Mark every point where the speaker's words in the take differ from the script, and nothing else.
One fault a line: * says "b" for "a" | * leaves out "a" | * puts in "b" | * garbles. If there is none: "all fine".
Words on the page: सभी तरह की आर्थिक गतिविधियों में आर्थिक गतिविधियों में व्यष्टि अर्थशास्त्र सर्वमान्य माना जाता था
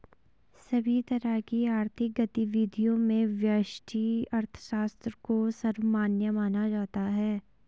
* leaves out "आर्थिक गतिविधियों में"
* puts in "को"
* says "है" for "था"